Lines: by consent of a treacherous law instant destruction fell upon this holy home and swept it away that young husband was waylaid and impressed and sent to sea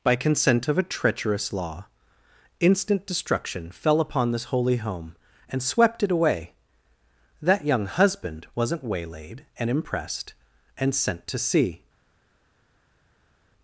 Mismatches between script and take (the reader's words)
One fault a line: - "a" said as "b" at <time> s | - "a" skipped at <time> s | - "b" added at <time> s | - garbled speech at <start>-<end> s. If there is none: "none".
- "was" said as "wasn't" at 8.6 s